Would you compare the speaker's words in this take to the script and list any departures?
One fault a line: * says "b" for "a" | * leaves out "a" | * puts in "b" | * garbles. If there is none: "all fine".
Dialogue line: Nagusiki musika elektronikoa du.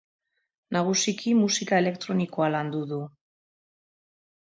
* puts in "landu"